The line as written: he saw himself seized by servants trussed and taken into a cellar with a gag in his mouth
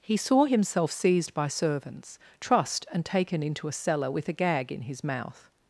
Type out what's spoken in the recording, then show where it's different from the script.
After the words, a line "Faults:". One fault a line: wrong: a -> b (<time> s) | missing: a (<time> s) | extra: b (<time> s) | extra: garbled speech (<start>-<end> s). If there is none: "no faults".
he saw himself seized by servants trussed and taken into a cellar with a gag in his mouth
Faults:
no faults